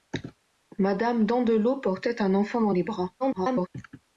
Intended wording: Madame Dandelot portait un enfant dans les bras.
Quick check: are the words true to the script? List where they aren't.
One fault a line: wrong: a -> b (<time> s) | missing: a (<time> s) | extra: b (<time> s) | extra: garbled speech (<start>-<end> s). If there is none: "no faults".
extra: garbled speech (3.2-3.7 s)